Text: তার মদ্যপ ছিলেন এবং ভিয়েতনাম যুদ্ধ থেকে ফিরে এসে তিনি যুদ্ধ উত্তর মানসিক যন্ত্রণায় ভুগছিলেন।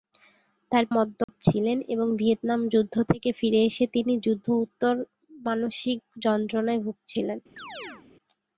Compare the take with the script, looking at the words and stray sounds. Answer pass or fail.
fail